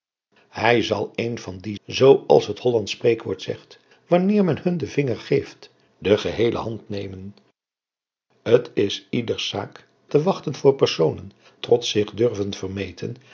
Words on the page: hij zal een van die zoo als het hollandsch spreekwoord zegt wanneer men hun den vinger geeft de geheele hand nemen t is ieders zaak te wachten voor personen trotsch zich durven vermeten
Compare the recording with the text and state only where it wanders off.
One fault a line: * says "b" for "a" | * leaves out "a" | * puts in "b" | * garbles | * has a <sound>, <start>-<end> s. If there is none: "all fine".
all fine